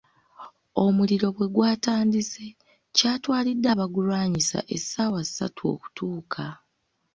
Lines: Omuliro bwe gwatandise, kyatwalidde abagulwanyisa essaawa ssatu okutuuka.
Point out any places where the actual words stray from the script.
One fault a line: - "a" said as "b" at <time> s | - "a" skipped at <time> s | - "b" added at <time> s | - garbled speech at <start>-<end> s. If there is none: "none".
none